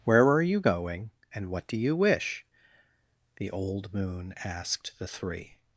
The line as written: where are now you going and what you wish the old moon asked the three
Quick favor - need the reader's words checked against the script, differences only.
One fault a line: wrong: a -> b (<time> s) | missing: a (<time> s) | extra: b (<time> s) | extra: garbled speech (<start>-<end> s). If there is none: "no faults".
missing: now (0.4 s)
extra: do (1.7 s)